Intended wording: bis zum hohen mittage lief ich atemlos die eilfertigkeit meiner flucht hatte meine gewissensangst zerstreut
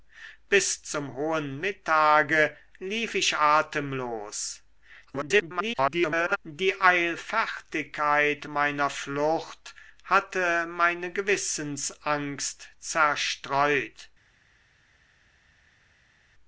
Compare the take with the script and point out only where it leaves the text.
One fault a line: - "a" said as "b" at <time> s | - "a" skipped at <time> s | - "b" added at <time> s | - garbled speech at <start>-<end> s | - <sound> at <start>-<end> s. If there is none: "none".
- garbled speech at 5.1-6.4 s